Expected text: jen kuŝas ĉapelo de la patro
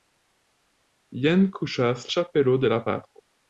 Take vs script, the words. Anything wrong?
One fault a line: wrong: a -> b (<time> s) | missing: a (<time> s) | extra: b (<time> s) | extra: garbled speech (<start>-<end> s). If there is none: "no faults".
no faults